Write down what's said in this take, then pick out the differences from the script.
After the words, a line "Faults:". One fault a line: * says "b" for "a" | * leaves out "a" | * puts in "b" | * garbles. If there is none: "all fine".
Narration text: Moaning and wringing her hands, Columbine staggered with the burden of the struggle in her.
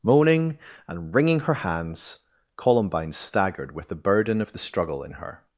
Moaning and wringing her hands, Columbine staggered with the burden of the struggle in her.
Faults:
all fine